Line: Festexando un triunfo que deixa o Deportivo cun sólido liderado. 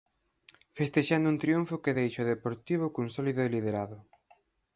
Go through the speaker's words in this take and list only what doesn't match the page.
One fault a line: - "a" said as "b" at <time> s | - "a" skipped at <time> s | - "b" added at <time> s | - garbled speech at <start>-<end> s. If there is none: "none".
none